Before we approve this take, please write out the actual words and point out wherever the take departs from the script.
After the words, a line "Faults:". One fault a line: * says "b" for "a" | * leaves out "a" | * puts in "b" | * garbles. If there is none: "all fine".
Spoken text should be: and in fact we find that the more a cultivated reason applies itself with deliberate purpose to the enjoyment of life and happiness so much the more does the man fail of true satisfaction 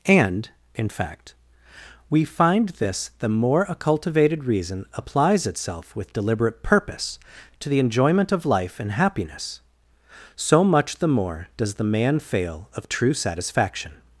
and in fact we find this the more a cultivated reason applies itself with deliberate purpose to the enjoyment of life and happiness so much the more does the man fail of true satisfaction
Faults:
* says "this" for "that"